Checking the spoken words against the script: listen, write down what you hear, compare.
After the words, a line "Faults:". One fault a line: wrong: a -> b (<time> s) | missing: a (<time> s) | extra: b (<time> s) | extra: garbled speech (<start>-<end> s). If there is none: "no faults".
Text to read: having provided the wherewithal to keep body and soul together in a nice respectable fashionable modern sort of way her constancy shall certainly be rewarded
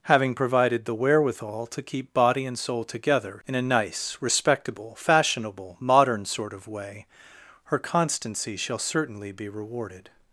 having provided the wherewithal to keep body and soul together in a nice respectable fashionable modern sort of way her constancy shall certainly be rewarded
Faults:
no faults